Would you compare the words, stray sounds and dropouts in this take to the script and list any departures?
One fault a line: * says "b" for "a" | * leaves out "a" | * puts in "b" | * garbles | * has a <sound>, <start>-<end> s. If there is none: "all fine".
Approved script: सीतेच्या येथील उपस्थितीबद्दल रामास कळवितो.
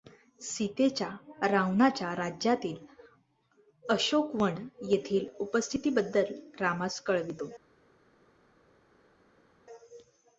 * puts in "रावणाच्या राज्यातील अशोकवन"